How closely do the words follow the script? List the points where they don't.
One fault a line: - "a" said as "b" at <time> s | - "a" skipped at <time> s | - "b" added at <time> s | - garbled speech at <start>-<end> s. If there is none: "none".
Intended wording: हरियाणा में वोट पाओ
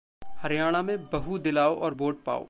- "बहू दिलाओ और" added at 1.1 s